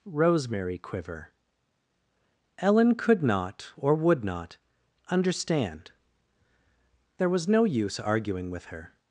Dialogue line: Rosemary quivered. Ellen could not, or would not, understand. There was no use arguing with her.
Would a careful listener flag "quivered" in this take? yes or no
yes